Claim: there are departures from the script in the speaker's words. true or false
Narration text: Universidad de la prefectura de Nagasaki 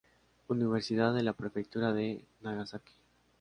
false